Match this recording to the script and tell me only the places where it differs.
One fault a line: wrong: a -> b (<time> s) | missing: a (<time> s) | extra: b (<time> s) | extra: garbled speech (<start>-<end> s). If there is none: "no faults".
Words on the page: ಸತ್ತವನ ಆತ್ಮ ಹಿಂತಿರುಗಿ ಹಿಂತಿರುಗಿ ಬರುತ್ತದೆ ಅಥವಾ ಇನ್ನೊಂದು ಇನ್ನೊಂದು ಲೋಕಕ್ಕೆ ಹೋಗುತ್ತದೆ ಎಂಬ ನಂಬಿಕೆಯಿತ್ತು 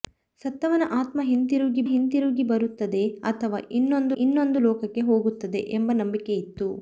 no faults